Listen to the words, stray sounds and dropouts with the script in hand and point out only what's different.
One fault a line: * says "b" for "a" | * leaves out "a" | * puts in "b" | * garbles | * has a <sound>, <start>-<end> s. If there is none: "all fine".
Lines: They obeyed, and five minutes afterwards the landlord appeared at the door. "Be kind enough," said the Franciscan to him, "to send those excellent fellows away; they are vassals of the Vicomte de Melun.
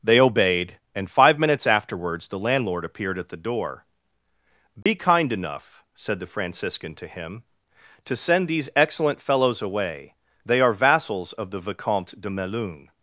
* has a dropout, 4.8-4.9 s
* says "these" for "those"